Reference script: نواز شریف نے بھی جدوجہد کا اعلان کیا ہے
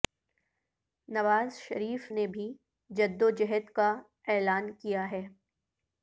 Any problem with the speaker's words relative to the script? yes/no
no